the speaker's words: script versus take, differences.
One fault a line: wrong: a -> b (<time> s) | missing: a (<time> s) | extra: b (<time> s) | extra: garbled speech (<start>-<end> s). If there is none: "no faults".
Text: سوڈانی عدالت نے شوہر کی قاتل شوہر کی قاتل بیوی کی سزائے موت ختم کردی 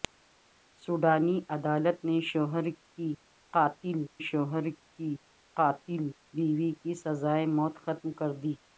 no faults